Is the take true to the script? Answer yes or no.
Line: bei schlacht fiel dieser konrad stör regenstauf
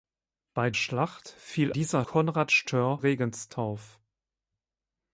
yes